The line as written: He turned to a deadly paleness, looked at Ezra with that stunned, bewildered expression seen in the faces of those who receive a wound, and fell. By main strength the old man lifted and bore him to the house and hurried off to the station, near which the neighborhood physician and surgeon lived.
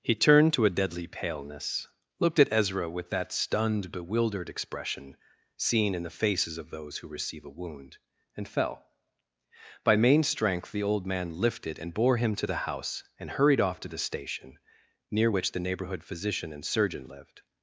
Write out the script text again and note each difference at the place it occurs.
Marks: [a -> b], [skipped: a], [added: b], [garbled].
He turned to a deadly paleness, looked at Ezra with that stunned, bewildered expression seen in the faces of those who receive a wound, and fell. By main strength the old man lifted and bore him to the house and hurried off to the station, near which the neighborhood physician and surgeon lived.